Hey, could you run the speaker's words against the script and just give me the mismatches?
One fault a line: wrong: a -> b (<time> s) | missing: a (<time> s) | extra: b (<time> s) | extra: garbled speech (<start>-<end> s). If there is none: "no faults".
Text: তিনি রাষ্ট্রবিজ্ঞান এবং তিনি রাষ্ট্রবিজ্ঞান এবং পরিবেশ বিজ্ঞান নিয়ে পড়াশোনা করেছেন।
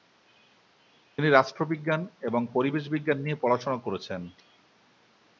missing: তিনি রাষ্ট্রবিজ্ঞান এবং (2.4 s)